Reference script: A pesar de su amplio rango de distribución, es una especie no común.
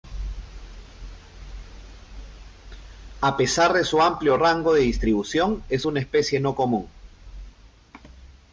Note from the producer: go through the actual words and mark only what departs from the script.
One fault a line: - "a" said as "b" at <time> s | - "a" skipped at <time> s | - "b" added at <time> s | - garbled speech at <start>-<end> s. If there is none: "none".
none